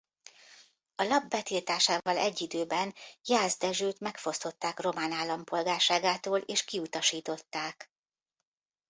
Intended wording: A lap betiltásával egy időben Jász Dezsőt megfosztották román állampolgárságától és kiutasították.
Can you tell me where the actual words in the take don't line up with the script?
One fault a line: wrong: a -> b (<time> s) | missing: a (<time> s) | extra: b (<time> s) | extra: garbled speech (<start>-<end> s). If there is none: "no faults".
no faults